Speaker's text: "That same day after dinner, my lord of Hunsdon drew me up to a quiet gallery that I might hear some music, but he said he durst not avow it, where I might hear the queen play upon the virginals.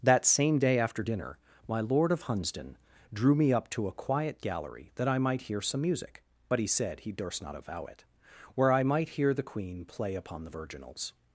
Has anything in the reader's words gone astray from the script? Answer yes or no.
no